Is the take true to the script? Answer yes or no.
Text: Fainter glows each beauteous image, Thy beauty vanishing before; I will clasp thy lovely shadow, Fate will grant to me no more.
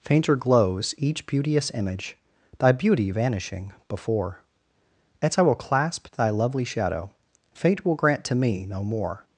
no